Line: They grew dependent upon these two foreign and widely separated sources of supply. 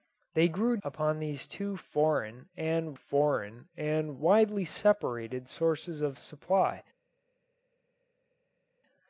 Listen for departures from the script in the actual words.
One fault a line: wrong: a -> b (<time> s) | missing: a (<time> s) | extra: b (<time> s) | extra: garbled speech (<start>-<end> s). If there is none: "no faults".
missing: dependent (0.8 s)
extra: foreign and (2.9 s)